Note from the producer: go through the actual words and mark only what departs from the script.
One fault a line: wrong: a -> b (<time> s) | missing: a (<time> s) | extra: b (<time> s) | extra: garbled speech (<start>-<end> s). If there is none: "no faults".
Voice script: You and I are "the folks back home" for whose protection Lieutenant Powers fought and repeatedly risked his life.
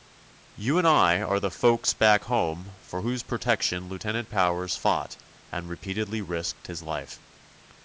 no faults